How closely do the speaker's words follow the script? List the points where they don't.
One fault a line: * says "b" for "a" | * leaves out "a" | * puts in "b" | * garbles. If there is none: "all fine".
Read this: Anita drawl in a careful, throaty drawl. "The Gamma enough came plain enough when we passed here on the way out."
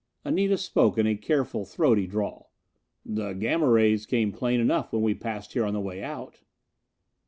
* says "spoke" for "drawl"
* says "rays" for "enough"